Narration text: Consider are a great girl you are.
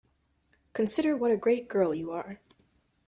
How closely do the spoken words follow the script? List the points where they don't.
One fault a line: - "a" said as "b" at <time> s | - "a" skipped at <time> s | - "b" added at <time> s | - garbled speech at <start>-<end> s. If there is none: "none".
- "are" said as "what" at 1.1 s